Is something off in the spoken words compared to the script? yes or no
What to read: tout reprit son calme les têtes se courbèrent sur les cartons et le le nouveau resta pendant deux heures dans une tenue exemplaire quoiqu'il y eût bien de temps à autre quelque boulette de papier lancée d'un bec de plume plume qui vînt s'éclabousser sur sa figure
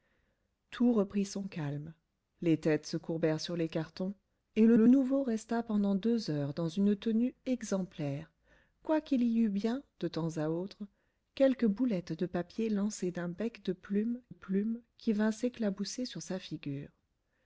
no